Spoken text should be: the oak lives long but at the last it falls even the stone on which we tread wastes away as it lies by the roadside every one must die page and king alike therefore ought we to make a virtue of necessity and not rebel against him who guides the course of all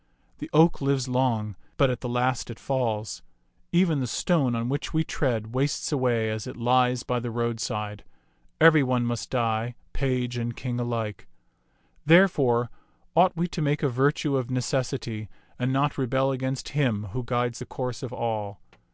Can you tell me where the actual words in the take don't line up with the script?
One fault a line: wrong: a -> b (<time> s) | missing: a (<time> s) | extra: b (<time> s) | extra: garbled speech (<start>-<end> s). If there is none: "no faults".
no faults